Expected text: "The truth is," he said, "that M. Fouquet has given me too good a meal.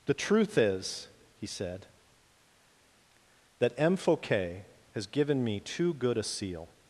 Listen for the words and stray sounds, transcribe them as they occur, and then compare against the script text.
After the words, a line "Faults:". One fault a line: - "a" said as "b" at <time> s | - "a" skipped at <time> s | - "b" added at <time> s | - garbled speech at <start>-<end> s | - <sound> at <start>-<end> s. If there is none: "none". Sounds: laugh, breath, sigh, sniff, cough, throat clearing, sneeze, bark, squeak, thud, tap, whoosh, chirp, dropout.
"The truth is," he said, "that M. Fouquet has given me too good a seal.
Faults:
- "meal" said as "seal" at 6.2 s